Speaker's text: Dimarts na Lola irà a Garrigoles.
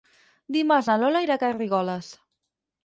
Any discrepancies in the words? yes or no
no